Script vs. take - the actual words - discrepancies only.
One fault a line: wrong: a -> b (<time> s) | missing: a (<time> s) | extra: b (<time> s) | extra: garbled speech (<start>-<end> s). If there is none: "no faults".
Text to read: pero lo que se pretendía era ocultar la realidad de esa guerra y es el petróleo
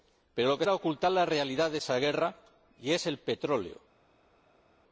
missing: se pretendía (0.7 s)